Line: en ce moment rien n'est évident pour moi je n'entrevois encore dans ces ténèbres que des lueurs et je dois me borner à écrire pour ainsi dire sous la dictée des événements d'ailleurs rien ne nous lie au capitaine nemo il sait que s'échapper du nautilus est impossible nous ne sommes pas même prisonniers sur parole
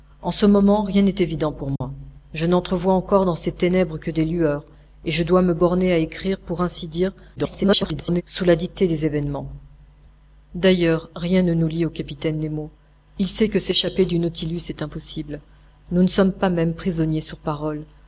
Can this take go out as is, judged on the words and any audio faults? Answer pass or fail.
fail